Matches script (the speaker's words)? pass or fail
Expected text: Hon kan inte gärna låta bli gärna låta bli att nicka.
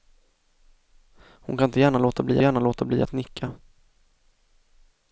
pass